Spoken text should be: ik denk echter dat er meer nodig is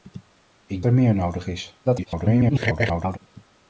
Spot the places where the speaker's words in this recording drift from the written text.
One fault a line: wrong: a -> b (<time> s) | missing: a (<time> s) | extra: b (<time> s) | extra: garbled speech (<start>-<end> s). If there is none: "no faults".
missing: denk echter dat (0.8 s)
extra: garbled speech (1.8-3.2 s)